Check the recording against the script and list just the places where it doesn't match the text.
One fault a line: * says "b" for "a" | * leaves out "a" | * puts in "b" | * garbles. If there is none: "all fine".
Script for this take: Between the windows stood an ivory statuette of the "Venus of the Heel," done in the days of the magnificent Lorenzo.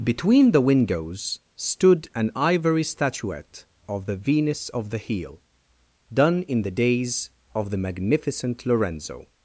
all fine